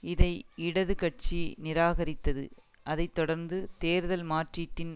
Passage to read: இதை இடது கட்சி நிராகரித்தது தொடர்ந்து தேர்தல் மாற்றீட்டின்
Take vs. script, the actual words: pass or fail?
fail